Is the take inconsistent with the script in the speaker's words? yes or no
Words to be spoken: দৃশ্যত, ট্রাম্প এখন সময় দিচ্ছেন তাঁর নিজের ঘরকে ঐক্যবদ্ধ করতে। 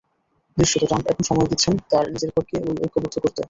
no